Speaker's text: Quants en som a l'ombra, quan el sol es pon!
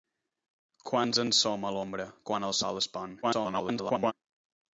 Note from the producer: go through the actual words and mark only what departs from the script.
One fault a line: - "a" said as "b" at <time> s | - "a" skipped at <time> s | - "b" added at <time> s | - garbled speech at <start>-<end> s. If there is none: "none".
- garbled speech at 3.2-4.1 s